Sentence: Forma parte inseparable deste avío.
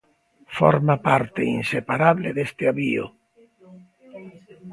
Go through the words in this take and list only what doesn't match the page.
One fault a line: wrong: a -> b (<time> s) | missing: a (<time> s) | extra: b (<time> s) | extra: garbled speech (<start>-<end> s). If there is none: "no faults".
no faults